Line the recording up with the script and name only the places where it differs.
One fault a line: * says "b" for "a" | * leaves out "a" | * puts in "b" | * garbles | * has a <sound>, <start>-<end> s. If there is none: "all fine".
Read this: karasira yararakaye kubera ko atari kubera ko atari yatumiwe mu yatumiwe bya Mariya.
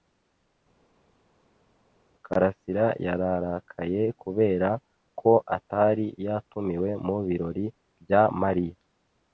* leaves out "kubera ko atari"
* says "birori" for "yatumiwe"